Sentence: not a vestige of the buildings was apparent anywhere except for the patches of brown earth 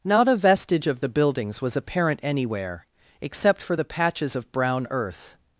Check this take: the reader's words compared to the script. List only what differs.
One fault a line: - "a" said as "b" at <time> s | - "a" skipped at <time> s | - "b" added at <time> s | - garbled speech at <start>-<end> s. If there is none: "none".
none